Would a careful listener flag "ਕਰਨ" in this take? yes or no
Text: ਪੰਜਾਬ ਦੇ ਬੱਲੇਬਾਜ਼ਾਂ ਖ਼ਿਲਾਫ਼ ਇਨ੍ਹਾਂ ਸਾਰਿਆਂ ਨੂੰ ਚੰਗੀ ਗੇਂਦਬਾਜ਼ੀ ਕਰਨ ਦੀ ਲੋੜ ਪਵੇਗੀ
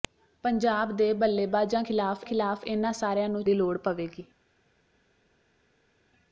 yes